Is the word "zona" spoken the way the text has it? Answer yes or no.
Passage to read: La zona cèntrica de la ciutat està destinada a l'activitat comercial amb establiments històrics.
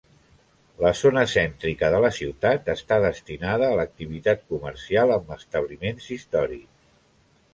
yes